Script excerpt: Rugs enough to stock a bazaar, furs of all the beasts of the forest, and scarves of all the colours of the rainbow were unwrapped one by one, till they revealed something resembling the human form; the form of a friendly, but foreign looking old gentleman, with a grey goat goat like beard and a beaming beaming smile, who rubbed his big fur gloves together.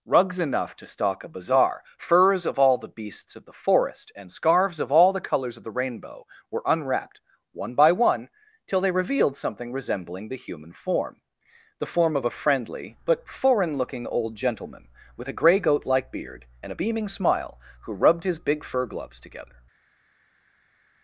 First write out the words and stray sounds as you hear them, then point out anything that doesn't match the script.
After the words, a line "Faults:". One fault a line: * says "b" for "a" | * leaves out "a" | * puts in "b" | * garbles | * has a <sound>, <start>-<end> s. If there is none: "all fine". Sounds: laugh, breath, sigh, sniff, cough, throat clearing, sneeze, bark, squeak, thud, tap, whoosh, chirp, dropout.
Rugs enough to stock a bazaar, furs of all the beasts of the forest, and scarves of all the colours of the rainbow were unwrapped one by one, till they revealed something resembling the human form; the form of a friendly, but foreign looking old gentleman, with a grey goat like beard and a beaming smile, who rubbed his big fur gloves together.
Faults:
* leaves out "goat"
* leaves out "beaming"